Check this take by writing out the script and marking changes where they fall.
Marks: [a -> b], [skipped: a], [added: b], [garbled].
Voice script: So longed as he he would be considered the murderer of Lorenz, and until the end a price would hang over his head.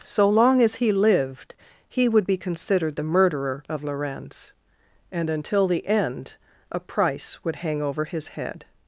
So [longed -> long] as he [added: lived] he would be considered the murderer of Lorenz, and until the end a price would hang over his head.